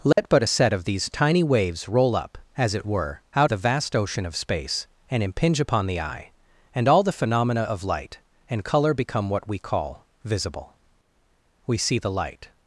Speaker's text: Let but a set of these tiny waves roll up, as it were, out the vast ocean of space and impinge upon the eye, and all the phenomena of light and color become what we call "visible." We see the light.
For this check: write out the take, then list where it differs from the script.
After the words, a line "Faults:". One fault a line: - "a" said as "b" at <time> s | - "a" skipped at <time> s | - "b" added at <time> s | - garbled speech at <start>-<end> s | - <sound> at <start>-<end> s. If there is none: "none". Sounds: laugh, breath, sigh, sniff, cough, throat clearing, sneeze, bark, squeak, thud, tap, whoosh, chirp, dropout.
Let but a set of these tiny waves roll up, as it were, out the vast ocean of space and impinge upon the eye, and all the phenomena of light and color become what we call "visible." We see the light.
Faults:
- dropout at 0.1-0.2 s